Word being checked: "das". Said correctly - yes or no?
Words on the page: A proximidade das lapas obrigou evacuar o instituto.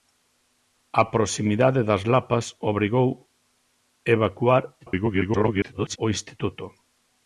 yes